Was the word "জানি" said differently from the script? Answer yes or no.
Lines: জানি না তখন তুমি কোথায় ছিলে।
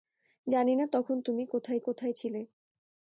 no